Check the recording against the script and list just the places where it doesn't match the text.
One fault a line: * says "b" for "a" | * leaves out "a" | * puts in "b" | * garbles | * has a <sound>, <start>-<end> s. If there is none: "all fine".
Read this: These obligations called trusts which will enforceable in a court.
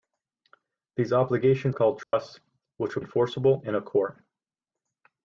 * has a dropout, 2.0-2.1 s